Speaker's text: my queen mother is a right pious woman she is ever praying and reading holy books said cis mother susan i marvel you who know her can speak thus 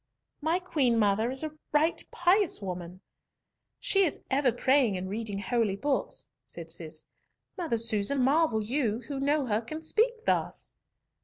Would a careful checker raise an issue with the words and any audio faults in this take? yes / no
yes